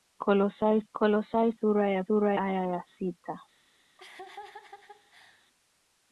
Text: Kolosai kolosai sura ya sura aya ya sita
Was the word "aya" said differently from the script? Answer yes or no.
no